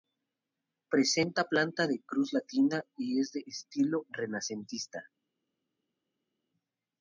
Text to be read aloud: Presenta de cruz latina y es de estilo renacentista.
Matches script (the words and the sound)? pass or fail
fail